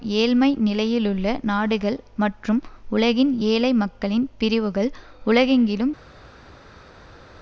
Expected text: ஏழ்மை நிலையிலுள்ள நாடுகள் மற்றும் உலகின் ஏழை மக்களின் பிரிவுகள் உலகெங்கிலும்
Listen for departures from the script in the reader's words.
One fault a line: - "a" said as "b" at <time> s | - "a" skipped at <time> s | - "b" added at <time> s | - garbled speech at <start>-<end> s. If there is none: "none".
none